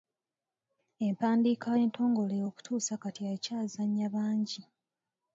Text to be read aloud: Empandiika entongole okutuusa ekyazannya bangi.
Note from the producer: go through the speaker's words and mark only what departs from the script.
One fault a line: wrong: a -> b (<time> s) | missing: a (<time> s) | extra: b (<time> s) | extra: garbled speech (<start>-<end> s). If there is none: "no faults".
extra: kati (3.0 s)